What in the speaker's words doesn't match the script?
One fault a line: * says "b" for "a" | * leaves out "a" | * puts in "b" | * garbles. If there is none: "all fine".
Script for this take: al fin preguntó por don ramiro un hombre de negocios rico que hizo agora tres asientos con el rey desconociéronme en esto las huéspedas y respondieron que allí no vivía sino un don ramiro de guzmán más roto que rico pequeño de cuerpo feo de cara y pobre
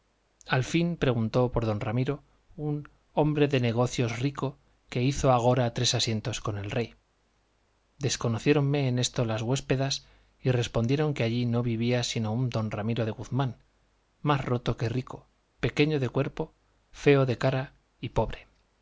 all fine